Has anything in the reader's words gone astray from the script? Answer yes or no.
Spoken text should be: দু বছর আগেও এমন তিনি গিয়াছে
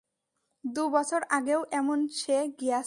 yes